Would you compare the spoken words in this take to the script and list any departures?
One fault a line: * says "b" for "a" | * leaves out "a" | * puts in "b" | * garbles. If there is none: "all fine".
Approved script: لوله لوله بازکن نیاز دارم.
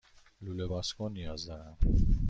* leaves out "لوله"